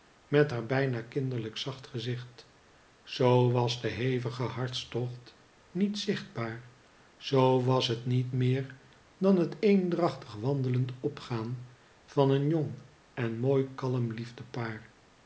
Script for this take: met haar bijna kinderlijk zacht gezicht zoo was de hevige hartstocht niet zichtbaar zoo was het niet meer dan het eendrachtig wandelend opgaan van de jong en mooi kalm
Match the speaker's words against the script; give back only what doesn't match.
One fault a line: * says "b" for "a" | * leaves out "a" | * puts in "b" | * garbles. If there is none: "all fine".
* says "een" for "de"